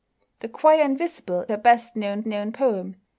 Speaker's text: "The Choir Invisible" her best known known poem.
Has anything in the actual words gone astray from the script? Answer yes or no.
no